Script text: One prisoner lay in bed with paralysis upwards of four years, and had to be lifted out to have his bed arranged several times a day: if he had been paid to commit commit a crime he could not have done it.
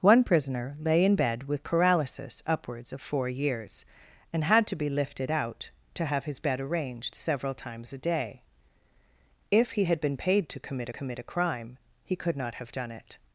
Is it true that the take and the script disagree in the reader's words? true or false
false